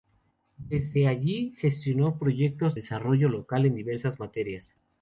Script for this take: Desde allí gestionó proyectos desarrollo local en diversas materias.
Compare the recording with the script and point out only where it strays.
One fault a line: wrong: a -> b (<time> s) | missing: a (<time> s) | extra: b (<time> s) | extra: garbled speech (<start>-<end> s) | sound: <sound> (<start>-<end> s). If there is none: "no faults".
no faults